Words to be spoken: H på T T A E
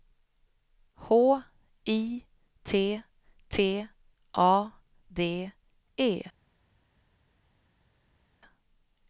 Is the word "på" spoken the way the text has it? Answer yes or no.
no